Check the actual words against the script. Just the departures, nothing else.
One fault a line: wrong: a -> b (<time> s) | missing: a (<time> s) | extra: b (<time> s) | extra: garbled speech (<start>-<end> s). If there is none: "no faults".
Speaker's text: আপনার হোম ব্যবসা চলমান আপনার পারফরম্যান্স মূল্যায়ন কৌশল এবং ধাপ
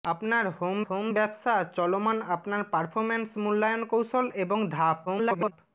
extra: হোম (0.9 s)
extra: garbled speech (5.1-5.5 s)